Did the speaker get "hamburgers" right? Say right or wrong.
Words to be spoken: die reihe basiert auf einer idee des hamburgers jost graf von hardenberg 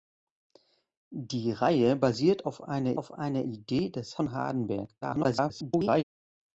wrong